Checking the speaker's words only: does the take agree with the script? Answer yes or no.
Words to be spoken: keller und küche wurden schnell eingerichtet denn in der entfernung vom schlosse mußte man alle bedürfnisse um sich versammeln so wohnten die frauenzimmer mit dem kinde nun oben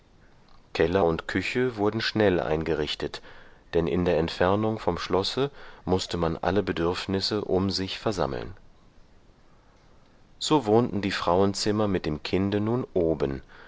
yes